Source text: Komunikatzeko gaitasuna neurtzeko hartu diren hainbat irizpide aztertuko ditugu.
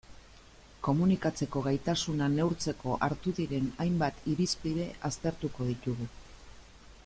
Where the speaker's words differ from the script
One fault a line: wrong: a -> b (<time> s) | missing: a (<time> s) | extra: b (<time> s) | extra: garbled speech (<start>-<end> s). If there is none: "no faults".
no faults